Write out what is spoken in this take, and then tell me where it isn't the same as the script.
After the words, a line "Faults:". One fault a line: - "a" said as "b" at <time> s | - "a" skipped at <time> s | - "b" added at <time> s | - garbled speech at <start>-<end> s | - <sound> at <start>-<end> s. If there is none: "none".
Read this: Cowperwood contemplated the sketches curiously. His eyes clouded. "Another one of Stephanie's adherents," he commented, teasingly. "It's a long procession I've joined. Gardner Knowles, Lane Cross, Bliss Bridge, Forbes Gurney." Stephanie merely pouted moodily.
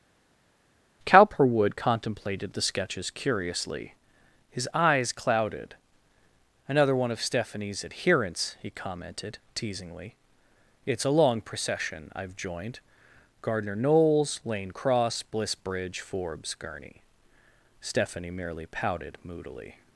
Cowperwood contemplated the sketches curiously. His eyes clouded. "Another one of Stephanie's adherents," he commented, teasingly. "It's a long procession I've joined. Gardner Knowles, Lane Cross, Bliss Bridge, Forbes Gurney." Stephanie merely pouted moodily.
Faults:
none